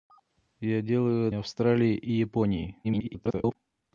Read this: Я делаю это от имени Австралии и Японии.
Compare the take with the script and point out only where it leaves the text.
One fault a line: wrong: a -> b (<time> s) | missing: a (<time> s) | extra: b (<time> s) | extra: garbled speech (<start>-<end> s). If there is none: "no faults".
missing: это от имени (1.3 s)
extra: garbled speech (2.8-3.6 s)